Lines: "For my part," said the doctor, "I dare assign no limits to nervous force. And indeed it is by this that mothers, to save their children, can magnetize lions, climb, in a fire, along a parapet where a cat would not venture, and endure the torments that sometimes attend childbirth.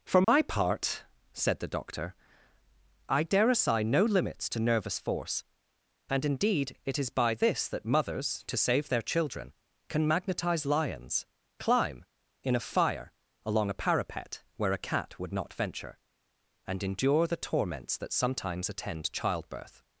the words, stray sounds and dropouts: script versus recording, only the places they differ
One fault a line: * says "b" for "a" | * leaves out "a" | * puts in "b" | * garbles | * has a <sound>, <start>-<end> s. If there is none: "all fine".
* has a dropout, 0.2-0.3 s